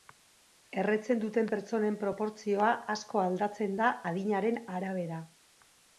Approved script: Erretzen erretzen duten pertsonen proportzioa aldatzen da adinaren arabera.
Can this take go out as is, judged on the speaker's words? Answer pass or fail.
fail